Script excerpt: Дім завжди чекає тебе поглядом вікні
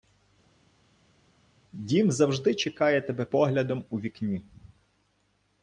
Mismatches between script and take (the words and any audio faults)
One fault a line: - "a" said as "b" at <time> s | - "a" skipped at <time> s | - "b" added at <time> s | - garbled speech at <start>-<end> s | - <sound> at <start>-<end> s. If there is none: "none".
- "у" added at 3.9 s